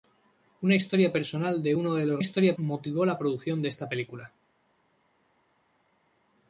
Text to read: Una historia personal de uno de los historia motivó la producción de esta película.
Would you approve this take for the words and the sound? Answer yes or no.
yes